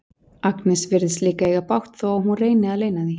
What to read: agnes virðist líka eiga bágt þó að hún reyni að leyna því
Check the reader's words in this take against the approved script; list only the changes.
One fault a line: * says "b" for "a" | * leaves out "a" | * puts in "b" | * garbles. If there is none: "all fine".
all fine